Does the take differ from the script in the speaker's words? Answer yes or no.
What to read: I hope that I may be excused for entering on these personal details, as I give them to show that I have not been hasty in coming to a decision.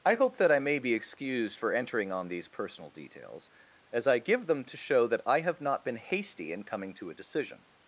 no